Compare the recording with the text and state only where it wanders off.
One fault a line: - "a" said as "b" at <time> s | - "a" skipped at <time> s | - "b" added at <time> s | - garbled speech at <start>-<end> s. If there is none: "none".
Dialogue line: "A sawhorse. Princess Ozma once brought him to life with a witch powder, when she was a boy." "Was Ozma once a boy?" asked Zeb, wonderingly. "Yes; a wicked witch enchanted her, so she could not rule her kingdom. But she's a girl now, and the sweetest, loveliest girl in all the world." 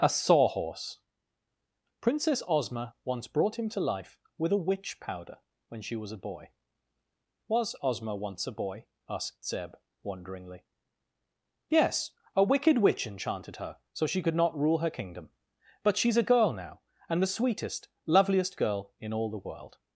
none